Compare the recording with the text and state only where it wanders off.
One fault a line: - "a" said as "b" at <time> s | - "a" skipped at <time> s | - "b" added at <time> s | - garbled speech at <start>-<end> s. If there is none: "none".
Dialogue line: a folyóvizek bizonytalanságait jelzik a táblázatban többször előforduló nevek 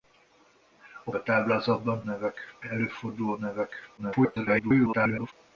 - "folyóvizek bizonytalanságait jelzik" skipped at 1.1 s
- "többször" said as "nevek" at 2.0 s
- garbled speech at 4.0-5.3 s